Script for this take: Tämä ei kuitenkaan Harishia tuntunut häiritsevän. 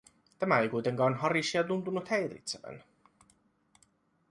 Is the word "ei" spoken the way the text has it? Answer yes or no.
yes